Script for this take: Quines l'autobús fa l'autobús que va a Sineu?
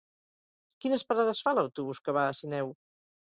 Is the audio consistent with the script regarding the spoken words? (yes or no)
no